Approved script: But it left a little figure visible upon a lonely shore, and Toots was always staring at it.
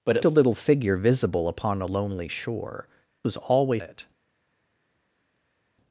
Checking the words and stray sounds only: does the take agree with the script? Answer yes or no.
no